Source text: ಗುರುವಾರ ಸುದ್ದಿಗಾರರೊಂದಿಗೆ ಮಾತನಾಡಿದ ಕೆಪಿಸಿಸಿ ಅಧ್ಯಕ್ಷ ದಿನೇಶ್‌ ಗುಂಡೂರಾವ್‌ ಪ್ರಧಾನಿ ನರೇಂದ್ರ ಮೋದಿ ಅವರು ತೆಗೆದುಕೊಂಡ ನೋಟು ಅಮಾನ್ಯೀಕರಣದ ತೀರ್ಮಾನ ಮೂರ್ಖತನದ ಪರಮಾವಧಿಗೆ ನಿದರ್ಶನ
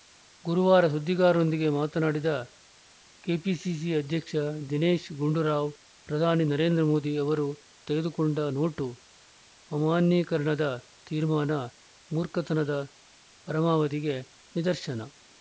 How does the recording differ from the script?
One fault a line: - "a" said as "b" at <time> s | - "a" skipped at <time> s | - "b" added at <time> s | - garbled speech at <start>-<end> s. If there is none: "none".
none